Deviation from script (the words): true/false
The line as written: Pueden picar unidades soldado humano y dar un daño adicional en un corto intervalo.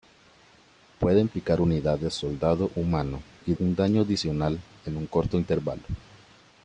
true